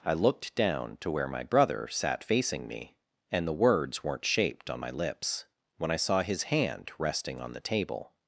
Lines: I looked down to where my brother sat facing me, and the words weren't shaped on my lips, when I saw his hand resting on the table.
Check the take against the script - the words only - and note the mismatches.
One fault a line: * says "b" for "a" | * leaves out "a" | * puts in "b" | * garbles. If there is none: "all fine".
all fine